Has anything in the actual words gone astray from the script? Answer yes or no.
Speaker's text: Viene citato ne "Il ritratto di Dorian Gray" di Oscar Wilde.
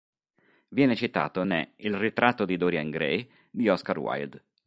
no